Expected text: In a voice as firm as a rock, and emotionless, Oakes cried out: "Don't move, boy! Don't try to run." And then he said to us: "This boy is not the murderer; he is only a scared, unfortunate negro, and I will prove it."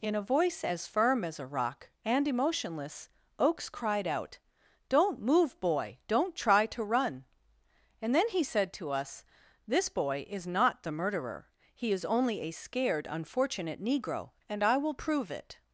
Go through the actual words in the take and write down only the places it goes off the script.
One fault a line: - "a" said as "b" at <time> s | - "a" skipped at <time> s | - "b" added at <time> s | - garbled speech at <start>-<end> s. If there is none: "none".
none